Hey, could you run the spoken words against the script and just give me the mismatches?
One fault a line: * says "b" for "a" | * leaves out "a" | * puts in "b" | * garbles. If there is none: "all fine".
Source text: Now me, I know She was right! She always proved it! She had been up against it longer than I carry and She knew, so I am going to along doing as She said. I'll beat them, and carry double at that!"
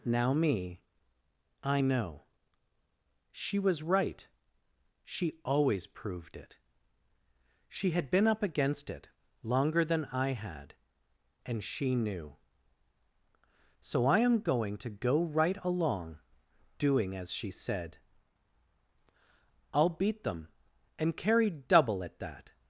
* says "had" for "carry"
* puts in "go right"